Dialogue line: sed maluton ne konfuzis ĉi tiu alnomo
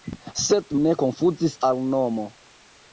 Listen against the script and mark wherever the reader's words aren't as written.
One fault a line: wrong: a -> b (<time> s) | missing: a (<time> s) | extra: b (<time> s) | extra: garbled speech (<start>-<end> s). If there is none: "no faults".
missing: maluton (0.7 s)
missing: ĉi tiu (1.6 s)